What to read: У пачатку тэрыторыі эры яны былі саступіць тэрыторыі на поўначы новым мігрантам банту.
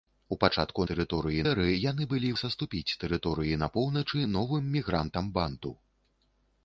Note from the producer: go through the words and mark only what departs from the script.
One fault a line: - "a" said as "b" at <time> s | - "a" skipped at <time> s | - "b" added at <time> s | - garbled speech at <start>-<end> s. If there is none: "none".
none